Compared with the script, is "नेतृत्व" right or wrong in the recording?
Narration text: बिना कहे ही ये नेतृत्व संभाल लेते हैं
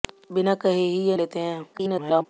wrong